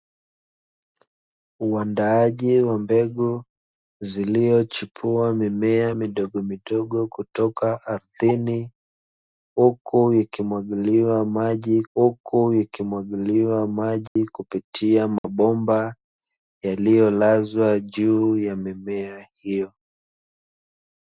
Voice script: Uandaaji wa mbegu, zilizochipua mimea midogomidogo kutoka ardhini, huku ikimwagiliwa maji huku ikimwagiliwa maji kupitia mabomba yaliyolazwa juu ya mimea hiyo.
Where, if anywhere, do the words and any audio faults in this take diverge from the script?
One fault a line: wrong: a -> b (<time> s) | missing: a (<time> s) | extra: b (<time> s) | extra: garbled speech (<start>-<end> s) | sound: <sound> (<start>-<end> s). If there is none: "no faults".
sound: dropout (14.1-14.2 s)
sound: dropout (15.2-15.2 s)